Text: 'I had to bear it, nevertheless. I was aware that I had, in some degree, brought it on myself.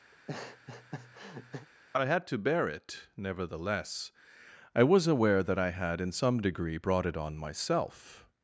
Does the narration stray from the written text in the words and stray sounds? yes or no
yes